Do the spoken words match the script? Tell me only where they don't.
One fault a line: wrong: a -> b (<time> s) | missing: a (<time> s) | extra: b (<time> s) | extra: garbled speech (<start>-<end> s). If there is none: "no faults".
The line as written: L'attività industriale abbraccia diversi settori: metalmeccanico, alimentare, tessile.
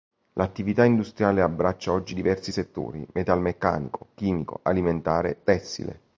extra: oggi (1.9 s)
extra: chimico (4.1 s)